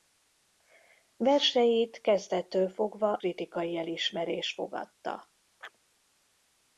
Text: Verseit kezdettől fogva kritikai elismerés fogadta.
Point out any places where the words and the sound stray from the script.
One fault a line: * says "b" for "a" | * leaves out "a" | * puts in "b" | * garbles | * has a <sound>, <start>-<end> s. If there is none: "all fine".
* has a chirp, 5.6-5.8 s